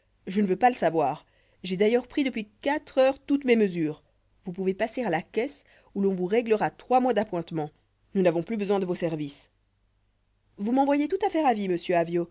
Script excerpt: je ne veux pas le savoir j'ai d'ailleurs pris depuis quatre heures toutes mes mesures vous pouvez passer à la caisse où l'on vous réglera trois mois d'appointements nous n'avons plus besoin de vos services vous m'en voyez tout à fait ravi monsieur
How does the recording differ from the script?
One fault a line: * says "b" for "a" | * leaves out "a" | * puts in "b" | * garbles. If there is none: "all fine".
all fine